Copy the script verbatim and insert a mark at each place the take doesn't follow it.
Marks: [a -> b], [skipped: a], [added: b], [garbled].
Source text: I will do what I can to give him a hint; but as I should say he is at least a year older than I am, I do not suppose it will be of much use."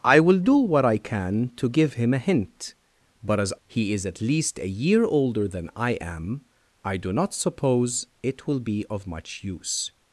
I will do what I can to give him a hint; but as [skipped: I should say] he is at least a year older than I am, I do not suppose it will be of much use."